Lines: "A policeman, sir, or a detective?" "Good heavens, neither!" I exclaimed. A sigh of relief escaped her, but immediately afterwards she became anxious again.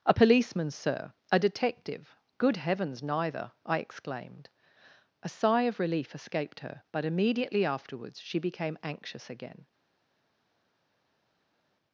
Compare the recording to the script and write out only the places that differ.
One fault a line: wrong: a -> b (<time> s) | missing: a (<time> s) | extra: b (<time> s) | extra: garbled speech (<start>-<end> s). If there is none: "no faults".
missing: or (1.1 s)